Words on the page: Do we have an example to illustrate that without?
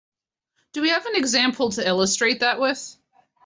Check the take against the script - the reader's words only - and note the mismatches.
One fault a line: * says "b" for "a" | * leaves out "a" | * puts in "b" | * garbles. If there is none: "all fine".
* says "with" for "without"